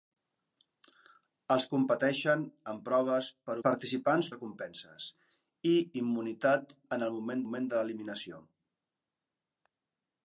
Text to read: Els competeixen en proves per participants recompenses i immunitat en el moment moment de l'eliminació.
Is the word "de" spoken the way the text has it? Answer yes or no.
yes